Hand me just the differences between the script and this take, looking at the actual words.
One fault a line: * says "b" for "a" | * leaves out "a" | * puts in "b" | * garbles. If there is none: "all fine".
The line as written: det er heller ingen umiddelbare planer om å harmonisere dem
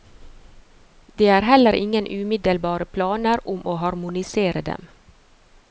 all fine